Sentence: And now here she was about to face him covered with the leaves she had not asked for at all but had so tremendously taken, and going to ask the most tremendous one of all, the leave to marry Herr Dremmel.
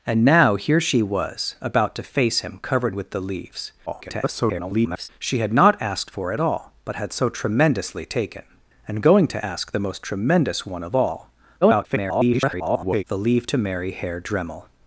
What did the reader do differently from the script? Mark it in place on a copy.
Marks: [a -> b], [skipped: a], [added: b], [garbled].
And now here she was about to face him covered with the leaves [garbled] she had not asked for at all but had so tremendously taken, and going to ask the most tremendous one of all, [garbled] the leave to marry Herr Dremmel.